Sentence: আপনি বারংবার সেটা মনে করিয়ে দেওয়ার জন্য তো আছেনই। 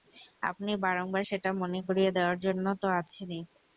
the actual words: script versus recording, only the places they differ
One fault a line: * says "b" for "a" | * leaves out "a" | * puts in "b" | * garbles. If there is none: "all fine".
all fine